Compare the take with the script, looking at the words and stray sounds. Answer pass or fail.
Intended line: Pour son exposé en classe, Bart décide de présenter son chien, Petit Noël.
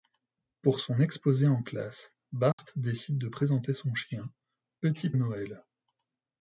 fail